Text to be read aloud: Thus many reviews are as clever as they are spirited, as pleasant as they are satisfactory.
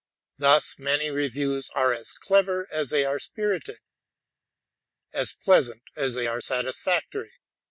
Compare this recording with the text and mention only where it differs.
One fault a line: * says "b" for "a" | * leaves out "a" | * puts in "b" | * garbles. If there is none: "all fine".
all fine